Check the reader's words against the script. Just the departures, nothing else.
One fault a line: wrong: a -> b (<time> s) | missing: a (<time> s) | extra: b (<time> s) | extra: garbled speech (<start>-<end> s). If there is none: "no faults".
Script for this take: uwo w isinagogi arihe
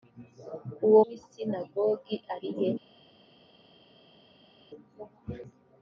no faults